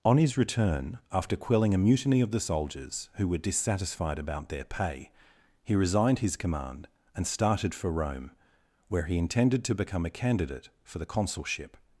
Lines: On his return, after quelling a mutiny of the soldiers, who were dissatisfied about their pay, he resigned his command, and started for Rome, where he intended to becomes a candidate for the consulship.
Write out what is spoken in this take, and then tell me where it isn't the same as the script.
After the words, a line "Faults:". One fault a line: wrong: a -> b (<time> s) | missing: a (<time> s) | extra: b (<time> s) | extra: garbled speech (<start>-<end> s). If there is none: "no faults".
On his return, after quelling a mutiny of the soldiers, who were dissatisfied about their pay, he resigned his command, and started for Rome, where he intended to become a candidate for the consulship.
Faults:
wrong: becomes -> become (9.8 s)